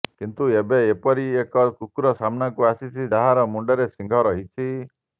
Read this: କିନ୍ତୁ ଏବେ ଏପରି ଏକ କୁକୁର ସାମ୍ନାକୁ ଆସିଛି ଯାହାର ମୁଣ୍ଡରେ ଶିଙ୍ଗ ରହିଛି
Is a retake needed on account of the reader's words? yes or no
no